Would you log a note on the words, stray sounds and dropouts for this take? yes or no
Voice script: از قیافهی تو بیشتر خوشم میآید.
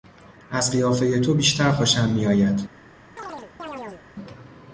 yes